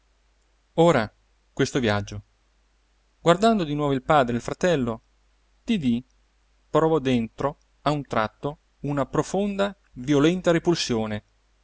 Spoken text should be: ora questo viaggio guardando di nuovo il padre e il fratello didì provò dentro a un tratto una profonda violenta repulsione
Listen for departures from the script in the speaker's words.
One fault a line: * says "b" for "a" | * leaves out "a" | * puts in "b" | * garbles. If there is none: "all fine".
all fine